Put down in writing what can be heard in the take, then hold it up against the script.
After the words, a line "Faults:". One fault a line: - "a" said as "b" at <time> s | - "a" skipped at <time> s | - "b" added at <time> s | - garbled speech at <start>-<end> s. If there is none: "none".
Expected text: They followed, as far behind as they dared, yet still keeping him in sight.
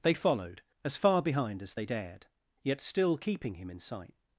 They followed, as far behind as they dared, yet still keeping him in sight.
Faults:
none